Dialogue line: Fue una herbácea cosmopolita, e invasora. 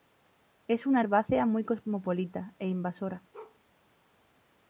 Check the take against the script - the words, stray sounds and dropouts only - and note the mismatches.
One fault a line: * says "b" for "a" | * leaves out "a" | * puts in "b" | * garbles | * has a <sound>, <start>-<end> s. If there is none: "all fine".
* says "Es" for "Fue"
* puts in "muy"
* has a bark, 3.3-3.6 s